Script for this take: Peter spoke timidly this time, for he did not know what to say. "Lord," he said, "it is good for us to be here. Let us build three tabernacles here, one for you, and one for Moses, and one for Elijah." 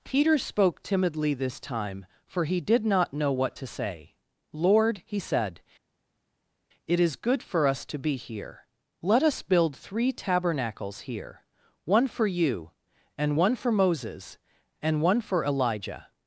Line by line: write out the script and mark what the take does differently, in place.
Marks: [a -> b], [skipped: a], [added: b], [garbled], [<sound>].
Peter spoke timidly this time, for he did not know what to say. "Lord," he said, "it is good for us to be here. Let us build three tabernacles here, one for you, and one for Moses, and one for Elijah."